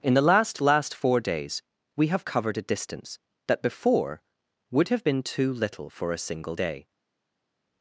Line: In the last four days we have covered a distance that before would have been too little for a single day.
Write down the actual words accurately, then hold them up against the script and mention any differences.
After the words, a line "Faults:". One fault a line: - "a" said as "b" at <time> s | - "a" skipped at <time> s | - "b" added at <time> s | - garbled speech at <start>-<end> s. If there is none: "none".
In the last last four days we have covered a distance that before would have been too little for a single day.
Faults:
- "last" added at 0.6 s